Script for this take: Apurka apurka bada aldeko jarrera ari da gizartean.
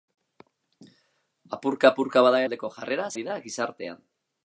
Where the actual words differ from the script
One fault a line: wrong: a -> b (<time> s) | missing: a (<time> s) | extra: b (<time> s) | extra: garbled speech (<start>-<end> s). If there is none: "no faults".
no faults